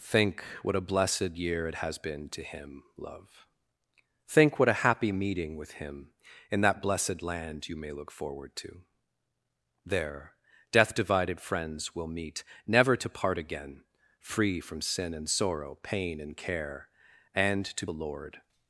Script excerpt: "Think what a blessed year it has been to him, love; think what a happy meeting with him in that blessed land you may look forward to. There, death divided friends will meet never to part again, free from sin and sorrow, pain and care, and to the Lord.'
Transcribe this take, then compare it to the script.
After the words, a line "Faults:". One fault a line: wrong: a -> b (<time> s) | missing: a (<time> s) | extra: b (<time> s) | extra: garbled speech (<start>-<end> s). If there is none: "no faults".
"Think what a blessed year it has been to him, love; think what a happy meeting with him in that blessed land you may look forward to. There, death divided friends will meet never to part again, free from sin and sorrow, pain and care, and to the Lord.'
Faults:
no faults